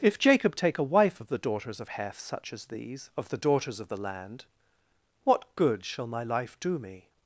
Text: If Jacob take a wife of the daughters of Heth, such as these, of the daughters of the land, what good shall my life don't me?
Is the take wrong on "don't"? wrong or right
wrong